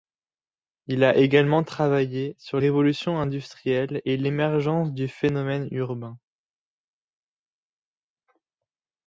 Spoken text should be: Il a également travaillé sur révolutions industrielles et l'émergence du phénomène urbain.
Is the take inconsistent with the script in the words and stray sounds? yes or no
no